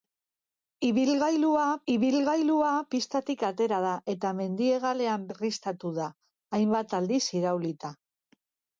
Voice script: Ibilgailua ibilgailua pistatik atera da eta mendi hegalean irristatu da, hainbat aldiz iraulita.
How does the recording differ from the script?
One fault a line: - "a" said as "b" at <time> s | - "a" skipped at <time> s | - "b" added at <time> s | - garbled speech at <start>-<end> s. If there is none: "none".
none